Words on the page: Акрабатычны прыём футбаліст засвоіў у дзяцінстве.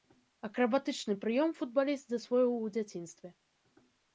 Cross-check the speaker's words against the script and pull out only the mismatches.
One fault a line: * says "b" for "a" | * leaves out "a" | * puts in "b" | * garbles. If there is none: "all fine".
all fine